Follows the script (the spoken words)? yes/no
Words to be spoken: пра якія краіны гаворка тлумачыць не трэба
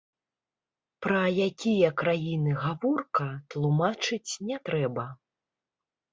yes